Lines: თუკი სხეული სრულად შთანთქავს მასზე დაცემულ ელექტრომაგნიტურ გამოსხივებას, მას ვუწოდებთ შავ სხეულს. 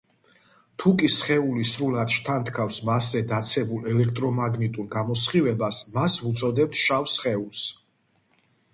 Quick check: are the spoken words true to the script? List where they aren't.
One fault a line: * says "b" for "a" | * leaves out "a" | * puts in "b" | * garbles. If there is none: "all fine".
all fine